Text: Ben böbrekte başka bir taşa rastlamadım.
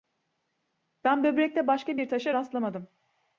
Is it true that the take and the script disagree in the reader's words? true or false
false